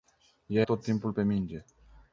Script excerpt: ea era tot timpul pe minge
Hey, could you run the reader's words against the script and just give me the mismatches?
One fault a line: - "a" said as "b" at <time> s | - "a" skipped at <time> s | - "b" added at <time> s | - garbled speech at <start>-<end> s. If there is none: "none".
- "era" skipped at 0.7 s